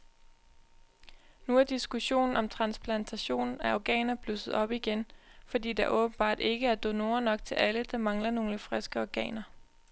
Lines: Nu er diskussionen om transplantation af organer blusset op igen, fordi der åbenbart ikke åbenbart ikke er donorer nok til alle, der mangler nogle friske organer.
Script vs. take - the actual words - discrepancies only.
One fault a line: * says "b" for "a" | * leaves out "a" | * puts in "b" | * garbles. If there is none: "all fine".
* leaves out "åbenbart ikke"